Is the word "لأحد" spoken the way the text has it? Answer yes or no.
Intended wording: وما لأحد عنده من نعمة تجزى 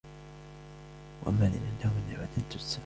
no